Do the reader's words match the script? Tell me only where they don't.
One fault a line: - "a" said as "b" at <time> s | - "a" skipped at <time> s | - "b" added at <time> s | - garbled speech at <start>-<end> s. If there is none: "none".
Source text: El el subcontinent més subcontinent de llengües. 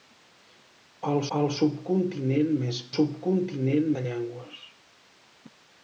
none